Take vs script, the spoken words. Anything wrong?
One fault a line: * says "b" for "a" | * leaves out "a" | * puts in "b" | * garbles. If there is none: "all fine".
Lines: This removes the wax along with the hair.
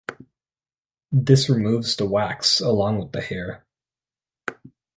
all fine